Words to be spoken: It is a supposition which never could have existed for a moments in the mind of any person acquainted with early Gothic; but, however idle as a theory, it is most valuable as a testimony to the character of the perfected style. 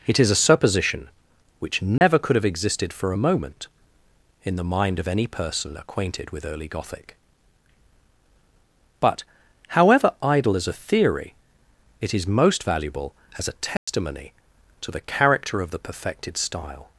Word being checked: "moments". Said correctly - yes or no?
no